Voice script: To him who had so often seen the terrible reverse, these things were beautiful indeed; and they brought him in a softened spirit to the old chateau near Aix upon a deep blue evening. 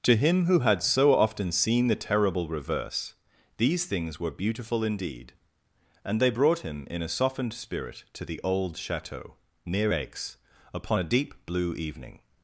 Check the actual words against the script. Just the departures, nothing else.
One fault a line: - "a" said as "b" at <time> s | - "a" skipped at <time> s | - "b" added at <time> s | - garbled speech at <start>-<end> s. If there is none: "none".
none